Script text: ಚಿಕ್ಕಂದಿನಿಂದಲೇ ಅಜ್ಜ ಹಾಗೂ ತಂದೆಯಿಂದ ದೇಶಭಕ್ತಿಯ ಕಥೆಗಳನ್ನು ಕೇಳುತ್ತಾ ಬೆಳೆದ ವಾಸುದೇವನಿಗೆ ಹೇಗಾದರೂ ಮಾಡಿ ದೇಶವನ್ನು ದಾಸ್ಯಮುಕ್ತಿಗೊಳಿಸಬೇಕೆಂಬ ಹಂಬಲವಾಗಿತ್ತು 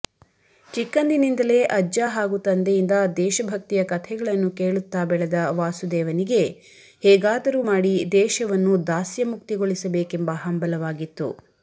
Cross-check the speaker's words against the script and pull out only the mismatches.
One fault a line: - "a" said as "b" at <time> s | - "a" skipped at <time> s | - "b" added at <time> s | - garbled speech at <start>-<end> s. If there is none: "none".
none